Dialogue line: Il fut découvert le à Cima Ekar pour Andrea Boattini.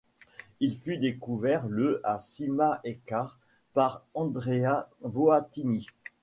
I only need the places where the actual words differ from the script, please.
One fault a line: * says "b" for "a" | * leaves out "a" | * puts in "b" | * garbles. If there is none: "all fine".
* says "par" for "pour"